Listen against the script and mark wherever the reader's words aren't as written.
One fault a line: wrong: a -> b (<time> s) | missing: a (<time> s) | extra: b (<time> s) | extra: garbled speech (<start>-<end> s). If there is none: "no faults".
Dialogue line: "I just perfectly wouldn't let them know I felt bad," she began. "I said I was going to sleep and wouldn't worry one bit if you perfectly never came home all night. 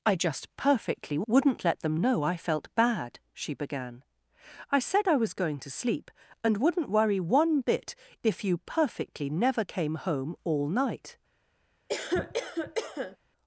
no faults